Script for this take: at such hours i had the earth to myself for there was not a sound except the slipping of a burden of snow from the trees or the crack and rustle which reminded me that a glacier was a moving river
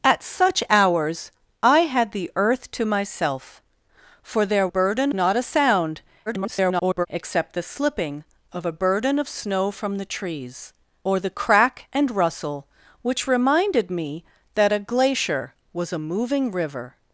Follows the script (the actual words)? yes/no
no